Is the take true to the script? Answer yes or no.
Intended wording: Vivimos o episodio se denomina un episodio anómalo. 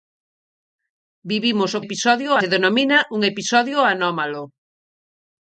yes